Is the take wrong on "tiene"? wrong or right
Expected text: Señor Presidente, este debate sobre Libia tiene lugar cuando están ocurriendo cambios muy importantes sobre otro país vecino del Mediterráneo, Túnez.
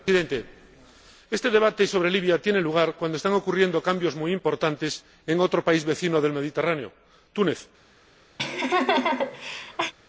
right